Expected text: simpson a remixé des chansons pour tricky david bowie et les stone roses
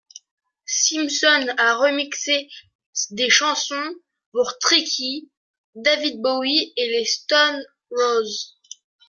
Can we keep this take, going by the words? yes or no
yes